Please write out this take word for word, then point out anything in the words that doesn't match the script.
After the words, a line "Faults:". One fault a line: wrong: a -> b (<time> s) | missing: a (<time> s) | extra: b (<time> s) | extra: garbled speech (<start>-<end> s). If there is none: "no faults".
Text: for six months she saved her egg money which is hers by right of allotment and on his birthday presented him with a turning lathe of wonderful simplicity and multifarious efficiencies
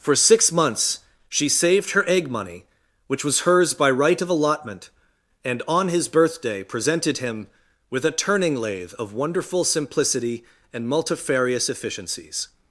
for six months she saved her egg money which was hers by right of allotment and on his birthday presented him with a turning lathe of wonderful simplicity and multifarious efficiencies
Faults:
wrong: is -> was (3.2 s)